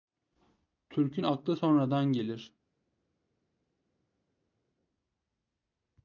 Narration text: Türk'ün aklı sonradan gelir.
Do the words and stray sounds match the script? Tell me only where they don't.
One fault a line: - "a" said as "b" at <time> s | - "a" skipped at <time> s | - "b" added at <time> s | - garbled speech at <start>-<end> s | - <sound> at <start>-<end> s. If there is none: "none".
none